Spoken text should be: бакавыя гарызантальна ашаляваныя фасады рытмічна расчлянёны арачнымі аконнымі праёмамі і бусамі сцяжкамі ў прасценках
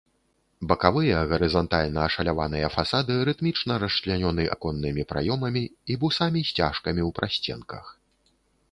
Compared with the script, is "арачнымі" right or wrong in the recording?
wrong